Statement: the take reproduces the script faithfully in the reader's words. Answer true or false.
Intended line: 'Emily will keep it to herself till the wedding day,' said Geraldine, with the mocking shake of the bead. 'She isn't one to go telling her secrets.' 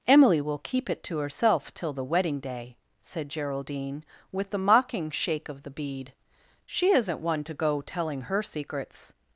true